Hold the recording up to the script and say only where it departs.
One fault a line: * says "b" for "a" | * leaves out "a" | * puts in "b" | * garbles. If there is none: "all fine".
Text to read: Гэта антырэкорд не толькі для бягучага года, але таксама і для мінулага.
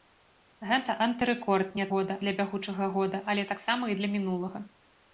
* says "года" for "толькі"